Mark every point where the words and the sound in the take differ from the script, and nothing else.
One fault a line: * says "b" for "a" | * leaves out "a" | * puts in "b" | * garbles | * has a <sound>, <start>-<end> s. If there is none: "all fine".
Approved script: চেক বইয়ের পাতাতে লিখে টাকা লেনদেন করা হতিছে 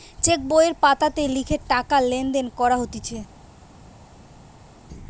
all fine